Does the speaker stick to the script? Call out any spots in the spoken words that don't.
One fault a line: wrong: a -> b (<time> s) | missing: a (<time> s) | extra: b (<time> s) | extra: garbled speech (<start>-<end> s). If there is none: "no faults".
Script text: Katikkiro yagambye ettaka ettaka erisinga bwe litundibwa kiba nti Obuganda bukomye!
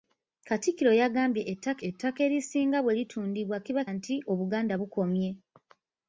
no faults